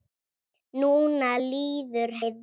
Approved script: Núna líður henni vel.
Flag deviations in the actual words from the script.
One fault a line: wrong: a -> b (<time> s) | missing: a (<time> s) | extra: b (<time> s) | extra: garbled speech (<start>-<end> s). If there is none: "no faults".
missing: henni (2.2 s)